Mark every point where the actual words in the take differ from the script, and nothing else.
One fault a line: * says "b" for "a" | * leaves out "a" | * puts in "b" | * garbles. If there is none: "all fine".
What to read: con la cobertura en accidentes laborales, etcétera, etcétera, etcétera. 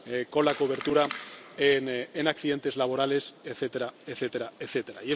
all fine